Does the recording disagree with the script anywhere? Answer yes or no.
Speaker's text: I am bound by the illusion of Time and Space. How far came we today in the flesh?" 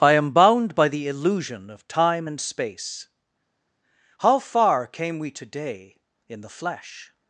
no